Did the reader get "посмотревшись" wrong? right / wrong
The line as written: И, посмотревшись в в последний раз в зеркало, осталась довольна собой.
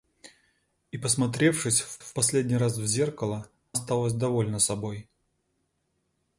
right